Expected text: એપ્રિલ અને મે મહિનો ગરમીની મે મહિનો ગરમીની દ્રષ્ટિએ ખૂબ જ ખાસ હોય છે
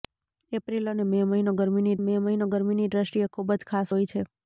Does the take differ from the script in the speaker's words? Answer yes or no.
no